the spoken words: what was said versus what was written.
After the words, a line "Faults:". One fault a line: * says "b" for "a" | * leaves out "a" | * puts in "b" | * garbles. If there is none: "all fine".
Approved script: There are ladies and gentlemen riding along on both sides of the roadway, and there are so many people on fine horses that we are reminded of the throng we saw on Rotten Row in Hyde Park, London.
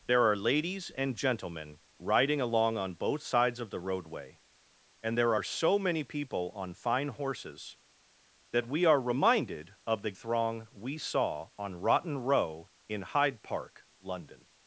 There are ladies and gentlemen riding along on both sides of the roadway, and there are so many people on fine horses that we are reminded of the throng we saw on Rotten Row in Hyde Park, London.
Faults:
all fine